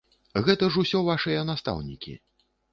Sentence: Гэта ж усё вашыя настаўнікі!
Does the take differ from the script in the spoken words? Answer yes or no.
no